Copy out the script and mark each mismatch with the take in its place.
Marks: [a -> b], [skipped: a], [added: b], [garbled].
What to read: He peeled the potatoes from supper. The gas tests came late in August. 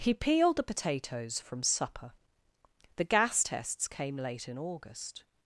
He peeled the potatoes from supper. The gas tests came late in August.